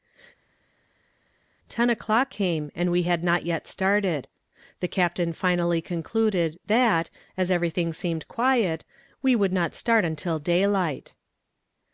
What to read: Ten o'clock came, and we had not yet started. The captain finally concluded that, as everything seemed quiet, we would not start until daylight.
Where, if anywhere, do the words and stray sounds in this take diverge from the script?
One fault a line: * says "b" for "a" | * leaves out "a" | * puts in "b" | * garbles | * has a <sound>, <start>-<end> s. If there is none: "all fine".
all fine